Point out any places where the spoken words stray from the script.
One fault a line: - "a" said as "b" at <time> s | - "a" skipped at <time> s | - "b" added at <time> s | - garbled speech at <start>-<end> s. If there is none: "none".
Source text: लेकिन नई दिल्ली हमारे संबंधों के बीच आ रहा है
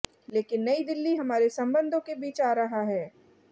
none